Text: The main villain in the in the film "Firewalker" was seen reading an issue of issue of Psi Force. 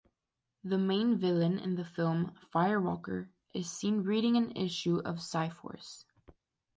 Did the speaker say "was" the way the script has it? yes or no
no